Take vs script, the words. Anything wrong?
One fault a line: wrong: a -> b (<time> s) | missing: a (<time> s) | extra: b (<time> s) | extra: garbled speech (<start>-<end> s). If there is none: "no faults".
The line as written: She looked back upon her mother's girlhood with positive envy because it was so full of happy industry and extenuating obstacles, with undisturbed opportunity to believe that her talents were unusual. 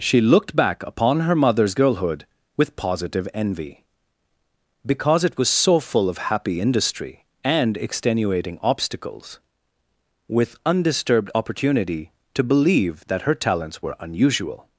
no faults